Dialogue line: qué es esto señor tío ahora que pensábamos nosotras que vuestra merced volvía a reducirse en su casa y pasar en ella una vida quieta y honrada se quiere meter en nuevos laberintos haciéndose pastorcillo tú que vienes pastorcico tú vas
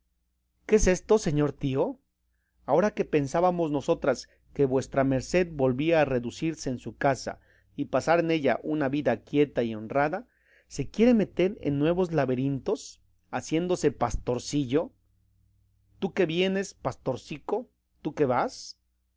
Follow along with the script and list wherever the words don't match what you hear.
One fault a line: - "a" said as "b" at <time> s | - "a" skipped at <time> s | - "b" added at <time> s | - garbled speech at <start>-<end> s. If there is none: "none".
- "que" added at 18.1 s